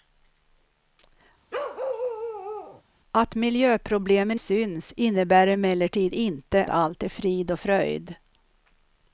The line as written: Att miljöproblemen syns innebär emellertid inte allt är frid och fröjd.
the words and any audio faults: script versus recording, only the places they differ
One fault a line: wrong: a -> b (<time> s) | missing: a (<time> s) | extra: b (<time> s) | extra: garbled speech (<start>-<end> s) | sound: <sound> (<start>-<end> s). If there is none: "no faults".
sound: bark (1.5-2.8 s)